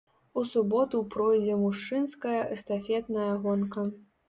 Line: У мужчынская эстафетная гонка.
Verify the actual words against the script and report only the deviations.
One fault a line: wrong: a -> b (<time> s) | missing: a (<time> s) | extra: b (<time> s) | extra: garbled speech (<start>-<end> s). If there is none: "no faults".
extra: суботу пройдзе (0.5 s)